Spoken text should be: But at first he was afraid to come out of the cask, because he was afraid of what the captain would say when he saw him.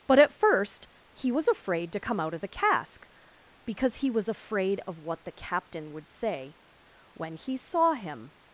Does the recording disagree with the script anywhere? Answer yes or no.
no